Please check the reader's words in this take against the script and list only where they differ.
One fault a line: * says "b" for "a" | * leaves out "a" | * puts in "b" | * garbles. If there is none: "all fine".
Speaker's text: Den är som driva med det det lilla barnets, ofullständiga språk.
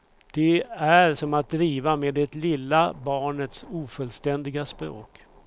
* says "Det" for "Den"
* puts in "att"
* leaves out "det"